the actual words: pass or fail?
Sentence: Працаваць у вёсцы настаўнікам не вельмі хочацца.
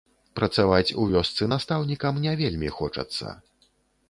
pass